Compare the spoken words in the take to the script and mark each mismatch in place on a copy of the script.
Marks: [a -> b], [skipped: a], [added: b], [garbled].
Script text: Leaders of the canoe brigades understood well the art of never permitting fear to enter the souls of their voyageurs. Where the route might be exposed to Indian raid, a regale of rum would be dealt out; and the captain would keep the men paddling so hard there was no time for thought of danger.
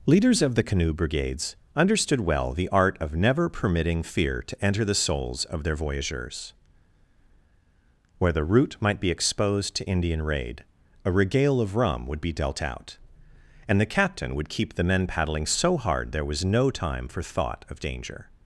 Leaders of the canoe brigades understood well the art of never permitting fear to enter the souls of their voyageurs. Where the route might be exposed to Indian raid, a regale of rum would be dealt out; and the captain would keep the men paddling so hard there was no time for thought of danger.